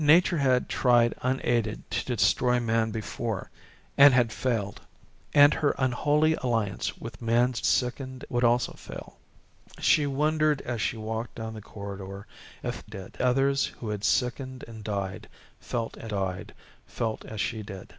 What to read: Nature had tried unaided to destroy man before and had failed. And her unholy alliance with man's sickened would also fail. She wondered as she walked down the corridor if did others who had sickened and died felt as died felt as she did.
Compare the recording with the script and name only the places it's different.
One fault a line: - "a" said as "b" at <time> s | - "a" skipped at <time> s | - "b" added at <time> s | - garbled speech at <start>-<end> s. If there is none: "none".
none